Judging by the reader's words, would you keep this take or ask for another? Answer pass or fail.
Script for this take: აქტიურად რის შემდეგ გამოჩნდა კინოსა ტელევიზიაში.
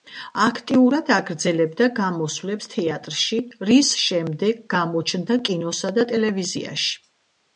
fail